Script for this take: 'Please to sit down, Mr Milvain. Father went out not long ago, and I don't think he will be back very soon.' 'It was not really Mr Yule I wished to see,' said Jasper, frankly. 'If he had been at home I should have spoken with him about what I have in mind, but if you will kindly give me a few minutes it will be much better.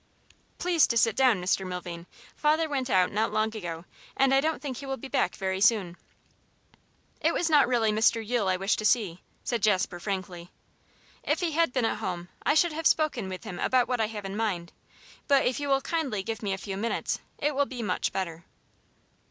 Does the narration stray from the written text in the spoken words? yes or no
no